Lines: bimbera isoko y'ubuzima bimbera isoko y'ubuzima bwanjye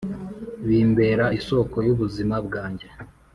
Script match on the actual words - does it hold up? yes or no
no